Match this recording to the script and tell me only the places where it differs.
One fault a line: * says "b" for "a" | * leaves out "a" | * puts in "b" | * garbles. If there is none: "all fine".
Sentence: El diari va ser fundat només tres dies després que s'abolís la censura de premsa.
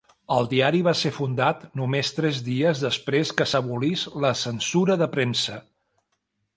all fine